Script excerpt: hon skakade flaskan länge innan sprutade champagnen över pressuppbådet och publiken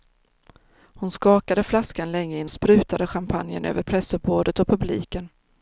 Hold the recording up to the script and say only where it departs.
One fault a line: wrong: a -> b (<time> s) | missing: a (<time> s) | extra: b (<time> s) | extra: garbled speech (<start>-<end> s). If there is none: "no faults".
no faults